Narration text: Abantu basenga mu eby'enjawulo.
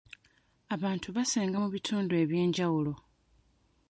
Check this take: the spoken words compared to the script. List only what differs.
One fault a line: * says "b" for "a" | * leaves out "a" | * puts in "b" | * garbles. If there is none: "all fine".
* puts in "bitundu"